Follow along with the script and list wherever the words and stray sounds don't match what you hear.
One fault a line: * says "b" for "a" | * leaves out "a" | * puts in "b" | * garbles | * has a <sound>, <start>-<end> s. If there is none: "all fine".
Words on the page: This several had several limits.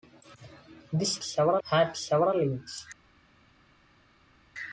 all fine